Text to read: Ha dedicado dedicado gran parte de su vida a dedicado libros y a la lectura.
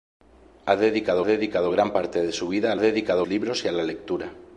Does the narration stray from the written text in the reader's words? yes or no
no